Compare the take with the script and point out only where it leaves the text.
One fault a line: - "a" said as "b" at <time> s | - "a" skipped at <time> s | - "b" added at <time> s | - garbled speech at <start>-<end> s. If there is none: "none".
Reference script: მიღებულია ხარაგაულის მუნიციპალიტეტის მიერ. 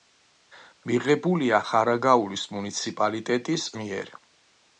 none